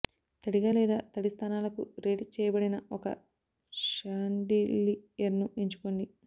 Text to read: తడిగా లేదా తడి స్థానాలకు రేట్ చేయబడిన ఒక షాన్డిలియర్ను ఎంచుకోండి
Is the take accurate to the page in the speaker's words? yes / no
yes